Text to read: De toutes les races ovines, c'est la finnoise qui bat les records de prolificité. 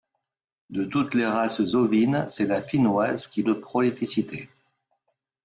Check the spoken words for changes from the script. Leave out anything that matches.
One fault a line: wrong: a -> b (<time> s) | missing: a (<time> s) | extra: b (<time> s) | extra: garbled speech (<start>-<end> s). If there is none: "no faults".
missing: bat les records (3.4 s)